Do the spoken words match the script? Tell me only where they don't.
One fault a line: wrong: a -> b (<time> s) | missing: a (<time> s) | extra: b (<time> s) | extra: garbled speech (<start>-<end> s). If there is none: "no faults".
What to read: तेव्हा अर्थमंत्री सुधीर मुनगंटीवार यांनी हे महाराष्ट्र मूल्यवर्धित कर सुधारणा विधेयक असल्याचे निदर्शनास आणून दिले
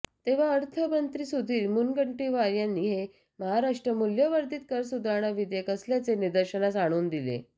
no faults